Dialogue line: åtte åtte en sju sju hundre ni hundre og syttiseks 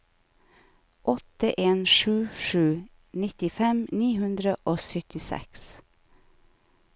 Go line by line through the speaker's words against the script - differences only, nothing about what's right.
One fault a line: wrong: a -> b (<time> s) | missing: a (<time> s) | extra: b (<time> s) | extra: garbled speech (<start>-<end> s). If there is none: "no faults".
missing: åtte (1.5 s)
wrong: hundre -> nittifem (3.2 s)